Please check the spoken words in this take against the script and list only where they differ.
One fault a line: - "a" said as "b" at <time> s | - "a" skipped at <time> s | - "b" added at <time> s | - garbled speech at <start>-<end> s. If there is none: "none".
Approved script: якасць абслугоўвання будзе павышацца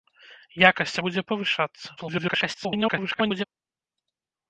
- "абслугоўвання" skipped at 0.9 s
- garbled speech at 2.0-3.4 s